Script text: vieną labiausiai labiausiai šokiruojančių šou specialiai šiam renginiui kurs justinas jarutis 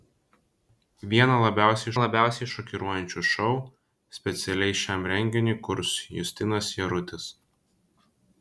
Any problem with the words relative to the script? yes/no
no